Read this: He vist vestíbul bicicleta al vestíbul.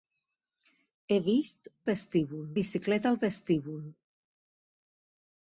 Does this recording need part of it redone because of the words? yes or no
no